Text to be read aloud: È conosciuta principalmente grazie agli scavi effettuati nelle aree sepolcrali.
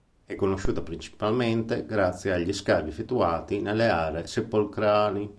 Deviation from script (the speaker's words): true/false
false